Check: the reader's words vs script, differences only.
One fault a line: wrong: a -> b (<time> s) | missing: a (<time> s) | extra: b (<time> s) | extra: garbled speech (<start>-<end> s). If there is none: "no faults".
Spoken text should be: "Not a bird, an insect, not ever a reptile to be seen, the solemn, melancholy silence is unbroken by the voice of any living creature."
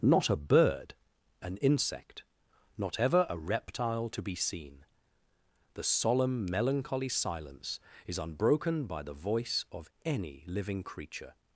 no faults